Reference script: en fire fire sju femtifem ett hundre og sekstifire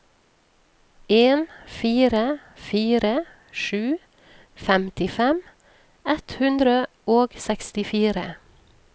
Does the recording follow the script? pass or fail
pass